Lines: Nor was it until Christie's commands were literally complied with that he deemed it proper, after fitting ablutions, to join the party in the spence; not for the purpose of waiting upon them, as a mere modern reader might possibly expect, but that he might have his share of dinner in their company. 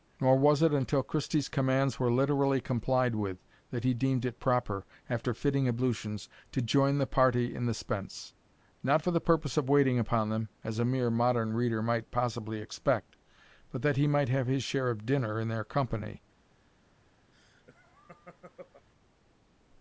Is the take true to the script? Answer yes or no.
yes